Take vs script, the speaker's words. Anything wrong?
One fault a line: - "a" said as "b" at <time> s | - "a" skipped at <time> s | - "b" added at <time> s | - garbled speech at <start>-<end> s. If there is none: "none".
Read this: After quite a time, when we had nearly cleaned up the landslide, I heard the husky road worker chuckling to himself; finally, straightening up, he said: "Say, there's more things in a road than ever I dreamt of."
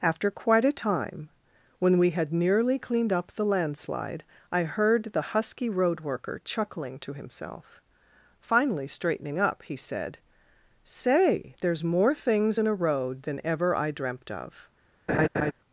none